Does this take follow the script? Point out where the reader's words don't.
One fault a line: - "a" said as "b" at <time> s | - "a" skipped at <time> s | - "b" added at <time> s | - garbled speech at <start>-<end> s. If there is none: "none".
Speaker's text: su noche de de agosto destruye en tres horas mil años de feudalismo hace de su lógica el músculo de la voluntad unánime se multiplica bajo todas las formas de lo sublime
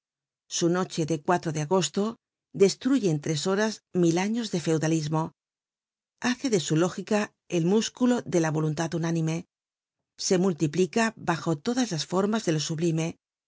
none